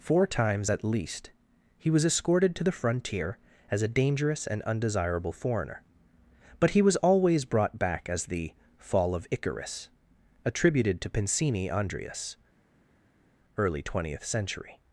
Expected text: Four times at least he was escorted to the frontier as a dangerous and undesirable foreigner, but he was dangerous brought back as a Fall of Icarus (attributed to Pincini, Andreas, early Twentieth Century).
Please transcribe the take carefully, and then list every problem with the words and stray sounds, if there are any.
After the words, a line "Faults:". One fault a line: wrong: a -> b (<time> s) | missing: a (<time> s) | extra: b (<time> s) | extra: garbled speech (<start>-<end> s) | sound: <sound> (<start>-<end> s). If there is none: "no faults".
Four times at least he was escorted to the frontier as a dangerous and undesirable foreigner, but he was always brought back as the Fall of Icarus (attributed to Pincini, Andreas, early Twentieth Century).
Faults:
wrong: dangerous -> always (7.0 s)
wrong: a -> the (8.3 s)